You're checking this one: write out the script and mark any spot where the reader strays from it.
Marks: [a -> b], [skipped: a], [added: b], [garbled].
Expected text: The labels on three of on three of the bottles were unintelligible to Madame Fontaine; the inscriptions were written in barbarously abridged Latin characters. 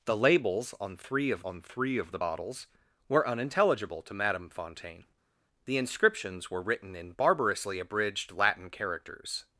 The labels on three of on three of the bottles were unintelligible to Madame Fontaine; the inscriptions were written in barbarously abridged Latin characters.